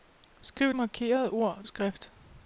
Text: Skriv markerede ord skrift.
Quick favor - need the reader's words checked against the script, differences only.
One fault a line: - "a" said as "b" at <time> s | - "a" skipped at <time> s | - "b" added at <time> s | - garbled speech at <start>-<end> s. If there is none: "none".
none